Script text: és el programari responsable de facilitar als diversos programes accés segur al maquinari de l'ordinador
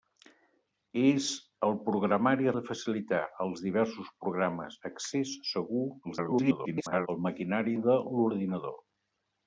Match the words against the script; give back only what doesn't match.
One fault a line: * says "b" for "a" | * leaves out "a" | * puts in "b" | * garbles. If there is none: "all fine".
* leaves out "responsable"
* garbles